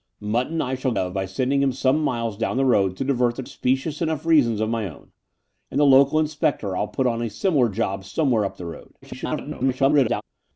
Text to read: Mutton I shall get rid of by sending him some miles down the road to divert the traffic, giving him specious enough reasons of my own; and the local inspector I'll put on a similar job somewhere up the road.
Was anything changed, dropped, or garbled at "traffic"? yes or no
yes